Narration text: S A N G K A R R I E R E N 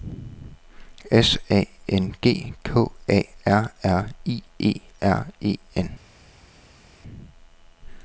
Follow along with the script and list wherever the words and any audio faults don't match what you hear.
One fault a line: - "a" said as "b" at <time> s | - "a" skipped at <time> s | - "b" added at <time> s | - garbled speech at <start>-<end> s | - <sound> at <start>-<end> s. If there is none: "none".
none